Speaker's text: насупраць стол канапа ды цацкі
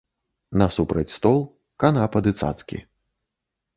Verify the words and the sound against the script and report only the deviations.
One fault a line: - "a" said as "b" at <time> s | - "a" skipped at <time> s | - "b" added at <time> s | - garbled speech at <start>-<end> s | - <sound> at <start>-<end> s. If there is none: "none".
none